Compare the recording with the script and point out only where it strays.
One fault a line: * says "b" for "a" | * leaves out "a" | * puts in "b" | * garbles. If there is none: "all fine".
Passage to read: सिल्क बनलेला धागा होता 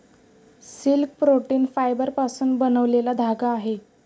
* puts in "प्रोटीन फायबरपासून"
* says "आहे" for "होता"